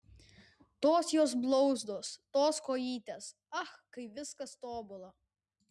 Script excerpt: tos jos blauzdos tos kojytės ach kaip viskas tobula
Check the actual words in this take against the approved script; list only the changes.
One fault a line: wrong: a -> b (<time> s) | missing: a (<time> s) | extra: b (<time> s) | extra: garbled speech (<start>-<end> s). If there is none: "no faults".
no faults